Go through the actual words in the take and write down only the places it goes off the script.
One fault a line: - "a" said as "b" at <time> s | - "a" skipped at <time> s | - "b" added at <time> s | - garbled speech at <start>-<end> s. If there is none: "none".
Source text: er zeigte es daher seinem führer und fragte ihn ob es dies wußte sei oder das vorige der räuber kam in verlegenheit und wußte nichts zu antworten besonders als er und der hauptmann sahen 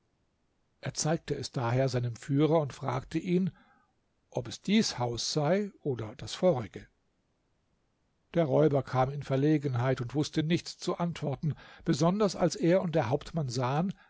- "wußte" said as "haus" at 5.0 s